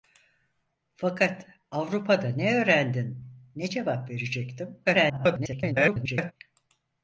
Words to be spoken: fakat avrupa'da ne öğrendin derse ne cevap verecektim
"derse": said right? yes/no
no